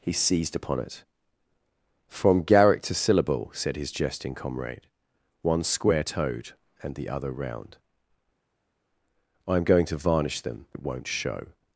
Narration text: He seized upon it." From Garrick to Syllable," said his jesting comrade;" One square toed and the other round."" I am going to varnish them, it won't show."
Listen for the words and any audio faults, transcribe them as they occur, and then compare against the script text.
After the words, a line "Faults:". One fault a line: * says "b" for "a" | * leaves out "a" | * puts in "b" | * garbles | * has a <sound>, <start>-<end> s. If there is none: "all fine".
He seized upon it." From Garrick to Syllable," said his jesting comrade;" One square toed and the other round."" I am going to varnish them, it won't show."
Faults:
all fine